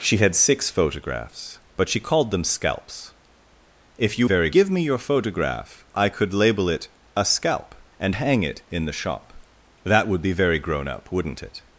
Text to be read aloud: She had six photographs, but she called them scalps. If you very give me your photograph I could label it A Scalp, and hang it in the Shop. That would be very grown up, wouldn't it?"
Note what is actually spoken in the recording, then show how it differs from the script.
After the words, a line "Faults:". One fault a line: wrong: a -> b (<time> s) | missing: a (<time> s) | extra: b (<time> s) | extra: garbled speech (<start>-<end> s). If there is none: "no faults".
She had six photographs, but she called them scalps. If you very give me your photograph I could label it A Scalp, and hang it in the Shop. That would be very grown up, wouldn't it?"
Faults:
no faults